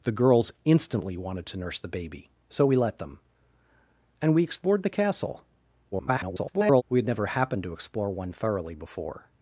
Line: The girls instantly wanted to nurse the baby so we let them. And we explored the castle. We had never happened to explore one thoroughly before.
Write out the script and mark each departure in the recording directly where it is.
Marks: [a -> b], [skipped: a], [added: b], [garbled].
The girls instantly wanted to nurse the baby so we let them. And we explored the castle. [garbled] We had never happened to explore one thoroughly before.